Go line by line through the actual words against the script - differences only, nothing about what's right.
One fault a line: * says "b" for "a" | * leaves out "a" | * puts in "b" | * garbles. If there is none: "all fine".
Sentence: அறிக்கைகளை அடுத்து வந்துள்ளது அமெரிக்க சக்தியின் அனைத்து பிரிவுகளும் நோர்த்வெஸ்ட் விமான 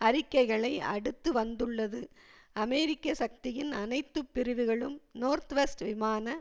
all fine